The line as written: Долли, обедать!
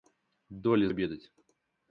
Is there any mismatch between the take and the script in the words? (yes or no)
no